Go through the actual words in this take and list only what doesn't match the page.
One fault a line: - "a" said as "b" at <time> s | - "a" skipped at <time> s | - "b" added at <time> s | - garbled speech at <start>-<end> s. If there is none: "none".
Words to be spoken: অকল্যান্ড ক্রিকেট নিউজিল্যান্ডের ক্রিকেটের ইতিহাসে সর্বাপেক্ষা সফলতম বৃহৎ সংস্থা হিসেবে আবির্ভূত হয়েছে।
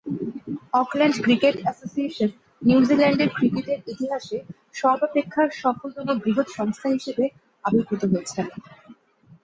- "অ্যাসোসিয়েশন" added at 1.6 s